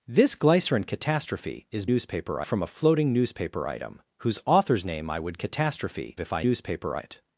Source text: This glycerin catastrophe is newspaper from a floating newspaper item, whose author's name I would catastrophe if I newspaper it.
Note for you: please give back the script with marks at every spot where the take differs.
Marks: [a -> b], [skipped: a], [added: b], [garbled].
This glycerin catastrophe is newspaper from a floating newspaper item, whose author's name I would catastrophe if I newspaper it.